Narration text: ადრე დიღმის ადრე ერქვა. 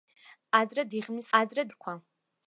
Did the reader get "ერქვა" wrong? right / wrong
right